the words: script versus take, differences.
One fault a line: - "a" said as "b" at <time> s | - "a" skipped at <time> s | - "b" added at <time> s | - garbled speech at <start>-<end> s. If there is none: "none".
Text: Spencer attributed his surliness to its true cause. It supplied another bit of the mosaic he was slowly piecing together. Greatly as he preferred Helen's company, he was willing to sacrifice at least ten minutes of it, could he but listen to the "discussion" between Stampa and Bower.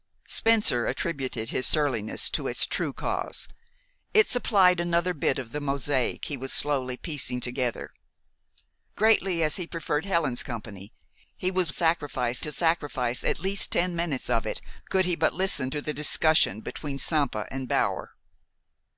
- "willing" said as "sacrifice" at 11.7 s